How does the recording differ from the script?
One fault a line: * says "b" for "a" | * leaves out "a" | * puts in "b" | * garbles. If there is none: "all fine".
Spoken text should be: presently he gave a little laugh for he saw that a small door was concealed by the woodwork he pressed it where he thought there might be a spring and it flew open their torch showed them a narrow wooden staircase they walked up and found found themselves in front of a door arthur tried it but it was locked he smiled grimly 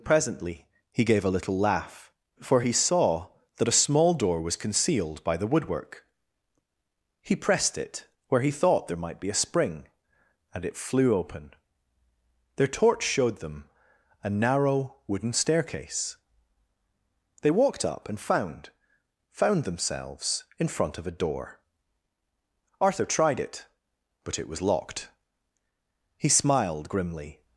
all fine